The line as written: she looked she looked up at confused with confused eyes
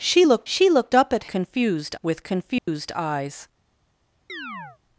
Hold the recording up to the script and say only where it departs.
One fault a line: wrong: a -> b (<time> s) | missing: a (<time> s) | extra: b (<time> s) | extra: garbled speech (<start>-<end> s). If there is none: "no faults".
no faults